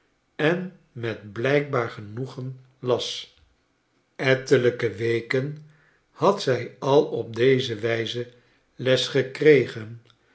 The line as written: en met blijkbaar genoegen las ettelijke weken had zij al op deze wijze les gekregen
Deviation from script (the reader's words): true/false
false